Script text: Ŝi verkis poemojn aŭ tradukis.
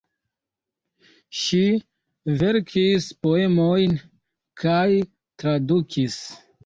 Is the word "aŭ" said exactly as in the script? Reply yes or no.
no